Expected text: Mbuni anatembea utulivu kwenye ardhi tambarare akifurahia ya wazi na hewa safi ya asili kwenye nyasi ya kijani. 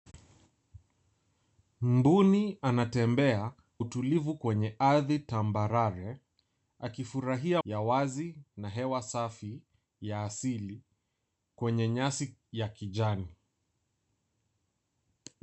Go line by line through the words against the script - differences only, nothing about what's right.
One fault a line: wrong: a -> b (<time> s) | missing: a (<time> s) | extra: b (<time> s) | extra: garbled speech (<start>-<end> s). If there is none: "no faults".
no faults